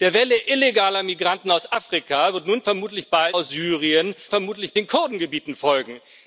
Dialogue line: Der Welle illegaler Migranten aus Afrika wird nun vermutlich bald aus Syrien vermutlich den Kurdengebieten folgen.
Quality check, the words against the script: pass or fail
pass